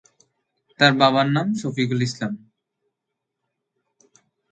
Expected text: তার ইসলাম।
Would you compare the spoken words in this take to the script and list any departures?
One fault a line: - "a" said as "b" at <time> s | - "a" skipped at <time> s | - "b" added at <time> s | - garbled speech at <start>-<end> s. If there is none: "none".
- "বাবার নাম শফিকুল" added at 1.0 s